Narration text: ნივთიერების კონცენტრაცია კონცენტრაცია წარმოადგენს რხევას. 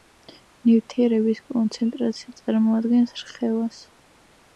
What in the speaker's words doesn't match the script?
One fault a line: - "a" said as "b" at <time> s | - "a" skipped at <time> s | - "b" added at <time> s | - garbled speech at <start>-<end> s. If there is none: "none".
- "კონცენტრაცია" skipped at 2.3 s